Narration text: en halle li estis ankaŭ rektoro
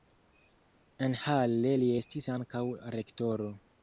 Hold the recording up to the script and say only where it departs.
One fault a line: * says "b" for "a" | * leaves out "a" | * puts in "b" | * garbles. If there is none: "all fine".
all fine